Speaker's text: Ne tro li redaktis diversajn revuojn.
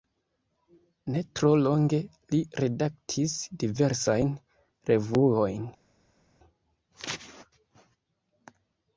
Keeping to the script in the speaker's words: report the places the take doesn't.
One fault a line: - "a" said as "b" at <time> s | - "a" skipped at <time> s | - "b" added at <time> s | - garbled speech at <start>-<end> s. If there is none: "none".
- "longe" added at 1.6 s